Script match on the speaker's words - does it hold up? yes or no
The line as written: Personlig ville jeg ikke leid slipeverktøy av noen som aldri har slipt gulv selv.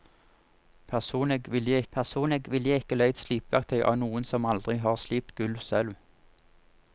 no